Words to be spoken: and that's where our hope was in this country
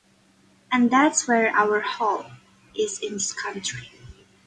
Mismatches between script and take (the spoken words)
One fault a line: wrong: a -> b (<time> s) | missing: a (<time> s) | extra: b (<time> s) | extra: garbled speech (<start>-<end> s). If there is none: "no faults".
wrong: was -> is (2.8 s)